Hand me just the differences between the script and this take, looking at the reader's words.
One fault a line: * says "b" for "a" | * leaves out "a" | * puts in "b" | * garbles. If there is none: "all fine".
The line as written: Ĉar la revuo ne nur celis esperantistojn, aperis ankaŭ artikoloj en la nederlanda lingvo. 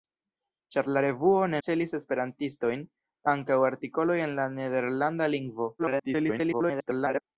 * leaves out "nur"
* leaves out "aperis"
* garbles